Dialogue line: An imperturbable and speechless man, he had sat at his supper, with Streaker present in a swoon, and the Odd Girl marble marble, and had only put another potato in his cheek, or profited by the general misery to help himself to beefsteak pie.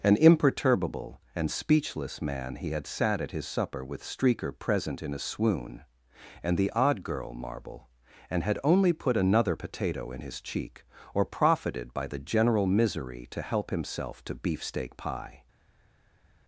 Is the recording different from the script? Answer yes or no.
yes